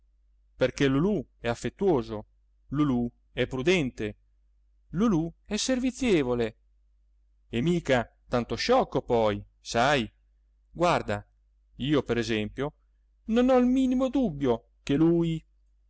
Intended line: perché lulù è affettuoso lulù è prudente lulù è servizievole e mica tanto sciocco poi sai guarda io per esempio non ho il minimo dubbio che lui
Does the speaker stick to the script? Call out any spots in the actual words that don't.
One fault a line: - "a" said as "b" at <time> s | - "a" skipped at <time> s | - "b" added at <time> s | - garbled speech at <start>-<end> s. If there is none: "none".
none